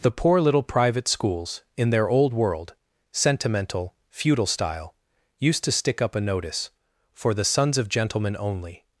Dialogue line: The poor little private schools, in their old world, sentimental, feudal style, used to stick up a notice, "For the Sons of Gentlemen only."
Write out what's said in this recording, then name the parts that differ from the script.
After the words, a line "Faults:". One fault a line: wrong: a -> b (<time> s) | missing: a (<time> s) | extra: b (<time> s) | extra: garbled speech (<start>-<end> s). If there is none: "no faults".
The poor little private schools, in their old world, sentimental, feudal style, used to stick up a notice, "For the Sons of Gentlemen only."
Faults:
no faults